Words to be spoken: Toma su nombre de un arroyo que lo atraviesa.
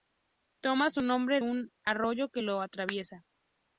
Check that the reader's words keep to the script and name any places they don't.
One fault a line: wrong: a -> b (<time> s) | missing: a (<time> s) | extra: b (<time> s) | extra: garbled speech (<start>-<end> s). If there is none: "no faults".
missing: de (1.4 s)